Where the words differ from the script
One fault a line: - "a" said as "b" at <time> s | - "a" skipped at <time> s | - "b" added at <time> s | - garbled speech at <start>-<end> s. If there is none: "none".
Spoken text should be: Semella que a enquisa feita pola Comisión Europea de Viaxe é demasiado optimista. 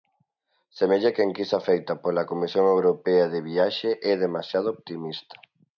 none